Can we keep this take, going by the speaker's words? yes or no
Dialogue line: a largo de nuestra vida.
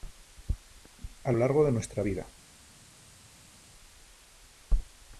yes